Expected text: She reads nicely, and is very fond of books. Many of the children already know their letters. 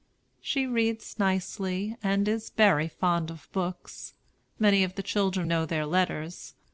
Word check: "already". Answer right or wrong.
wrong